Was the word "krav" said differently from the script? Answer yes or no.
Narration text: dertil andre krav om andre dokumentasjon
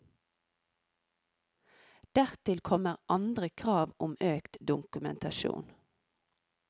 no